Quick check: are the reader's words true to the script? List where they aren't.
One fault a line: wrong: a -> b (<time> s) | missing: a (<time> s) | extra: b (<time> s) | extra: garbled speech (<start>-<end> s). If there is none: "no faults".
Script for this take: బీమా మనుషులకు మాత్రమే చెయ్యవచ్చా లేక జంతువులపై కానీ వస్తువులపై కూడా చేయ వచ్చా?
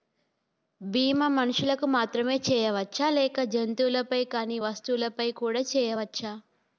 no faults